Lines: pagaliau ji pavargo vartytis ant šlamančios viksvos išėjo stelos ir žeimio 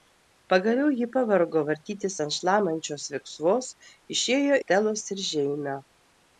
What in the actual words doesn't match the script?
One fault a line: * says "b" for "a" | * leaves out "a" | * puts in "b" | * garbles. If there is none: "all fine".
all fine